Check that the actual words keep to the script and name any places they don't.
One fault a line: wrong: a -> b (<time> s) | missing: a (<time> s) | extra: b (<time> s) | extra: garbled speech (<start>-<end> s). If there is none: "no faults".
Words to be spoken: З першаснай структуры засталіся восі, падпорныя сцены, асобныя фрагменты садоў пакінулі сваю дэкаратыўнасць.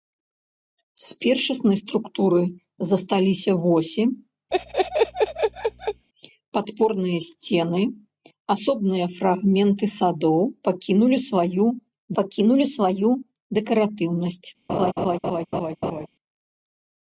extra: пакінулі сваю (12.2 s)